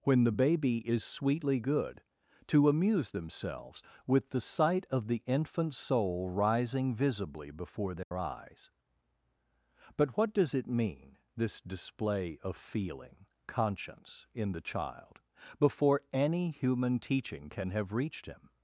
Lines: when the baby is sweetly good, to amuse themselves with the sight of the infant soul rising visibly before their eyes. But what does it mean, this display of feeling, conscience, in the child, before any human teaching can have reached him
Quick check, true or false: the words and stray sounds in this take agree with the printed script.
false